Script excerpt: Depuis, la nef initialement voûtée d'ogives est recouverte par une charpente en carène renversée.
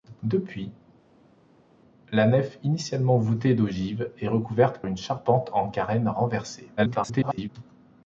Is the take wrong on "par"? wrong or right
wrong